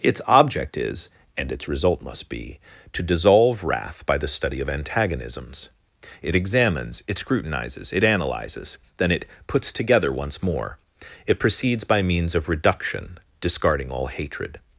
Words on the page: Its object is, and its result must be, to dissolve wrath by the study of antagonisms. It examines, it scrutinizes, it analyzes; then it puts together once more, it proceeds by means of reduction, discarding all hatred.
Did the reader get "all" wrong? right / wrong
right